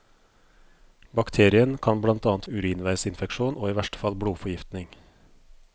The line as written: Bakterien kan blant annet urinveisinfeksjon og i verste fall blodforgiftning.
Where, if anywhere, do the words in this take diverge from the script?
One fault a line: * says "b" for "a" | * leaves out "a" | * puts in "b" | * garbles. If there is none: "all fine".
all fine